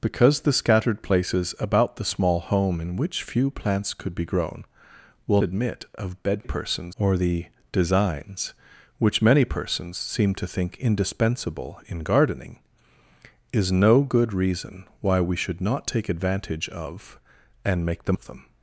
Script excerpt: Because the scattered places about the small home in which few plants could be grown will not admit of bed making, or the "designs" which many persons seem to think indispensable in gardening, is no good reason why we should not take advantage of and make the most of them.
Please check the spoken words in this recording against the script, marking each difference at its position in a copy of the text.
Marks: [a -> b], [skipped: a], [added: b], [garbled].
Because the scattered places about the small home in which few plants could be grown will [skipped: not] admit of bed [making, -> persons] or the "designs" which many persons seem to think indispensable in gardening, is no good reason why we should not take advantage of and make the [skipped: most] of them.